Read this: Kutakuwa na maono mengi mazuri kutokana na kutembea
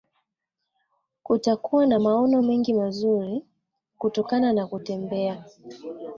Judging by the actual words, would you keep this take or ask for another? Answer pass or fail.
pass